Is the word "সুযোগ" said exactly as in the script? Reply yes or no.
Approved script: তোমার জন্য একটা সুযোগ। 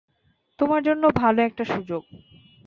yes